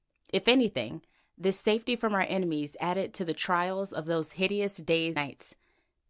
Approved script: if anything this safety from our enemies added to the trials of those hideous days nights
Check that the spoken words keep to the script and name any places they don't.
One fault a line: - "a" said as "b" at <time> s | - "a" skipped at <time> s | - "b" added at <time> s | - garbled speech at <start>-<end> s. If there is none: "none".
none